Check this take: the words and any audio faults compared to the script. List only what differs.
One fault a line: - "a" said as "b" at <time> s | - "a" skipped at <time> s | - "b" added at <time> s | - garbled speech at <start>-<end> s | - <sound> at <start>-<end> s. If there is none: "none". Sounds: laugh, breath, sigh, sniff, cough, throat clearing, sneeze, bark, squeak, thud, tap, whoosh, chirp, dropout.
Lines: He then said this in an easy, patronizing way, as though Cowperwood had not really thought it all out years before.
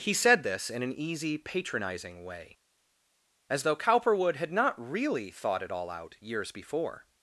- "then" skipped at 0.1 s